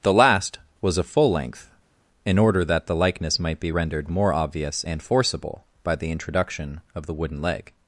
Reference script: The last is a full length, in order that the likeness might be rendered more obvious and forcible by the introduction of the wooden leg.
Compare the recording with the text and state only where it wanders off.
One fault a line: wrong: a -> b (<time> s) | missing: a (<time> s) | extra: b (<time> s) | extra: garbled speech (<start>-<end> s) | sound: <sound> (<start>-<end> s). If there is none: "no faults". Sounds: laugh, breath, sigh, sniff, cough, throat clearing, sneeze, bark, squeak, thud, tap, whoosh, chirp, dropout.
wrong: is -> was (0.8 s)